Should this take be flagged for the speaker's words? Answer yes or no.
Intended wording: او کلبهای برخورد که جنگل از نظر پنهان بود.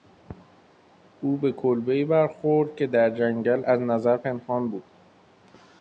yes